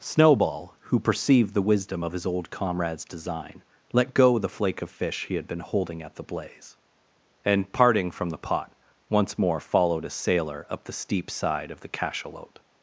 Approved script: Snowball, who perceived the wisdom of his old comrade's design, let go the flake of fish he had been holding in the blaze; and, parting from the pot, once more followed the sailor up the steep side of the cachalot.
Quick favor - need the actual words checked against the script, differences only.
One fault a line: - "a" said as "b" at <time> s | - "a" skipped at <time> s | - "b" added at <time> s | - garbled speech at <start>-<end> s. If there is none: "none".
- "in" said as "at" at 6.0 s
- "the" said as "a" at 10.0 s